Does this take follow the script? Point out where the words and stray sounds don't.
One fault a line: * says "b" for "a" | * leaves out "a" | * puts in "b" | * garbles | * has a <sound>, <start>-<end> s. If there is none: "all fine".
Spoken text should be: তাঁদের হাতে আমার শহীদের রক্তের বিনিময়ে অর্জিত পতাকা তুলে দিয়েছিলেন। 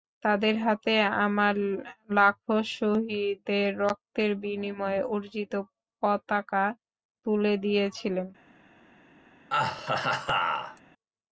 * puts in "লাখো"
* has a laugh, 9.5-10.8 s